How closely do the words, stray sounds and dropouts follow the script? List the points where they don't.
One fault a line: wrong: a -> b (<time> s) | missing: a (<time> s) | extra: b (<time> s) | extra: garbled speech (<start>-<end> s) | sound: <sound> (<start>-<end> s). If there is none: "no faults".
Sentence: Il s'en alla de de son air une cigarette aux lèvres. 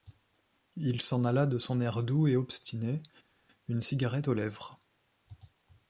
missing: de (1.6 s)
extra: doux et obstiné (2.0 s)